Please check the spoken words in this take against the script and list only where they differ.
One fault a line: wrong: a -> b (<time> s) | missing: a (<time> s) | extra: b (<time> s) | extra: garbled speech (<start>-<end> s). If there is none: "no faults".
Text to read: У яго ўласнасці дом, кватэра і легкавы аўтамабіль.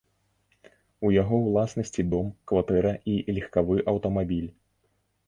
no faults